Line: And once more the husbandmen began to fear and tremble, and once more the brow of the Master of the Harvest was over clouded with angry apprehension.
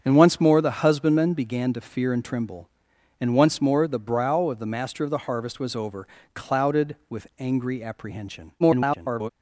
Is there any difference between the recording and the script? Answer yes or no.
yes